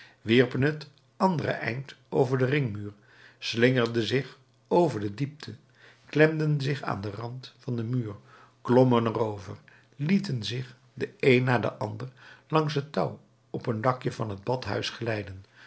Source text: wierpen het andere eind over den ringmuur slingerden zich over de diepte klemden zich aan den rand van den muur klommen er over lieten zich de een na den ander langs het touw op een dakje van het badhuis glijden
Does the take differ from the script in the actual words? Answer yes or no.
no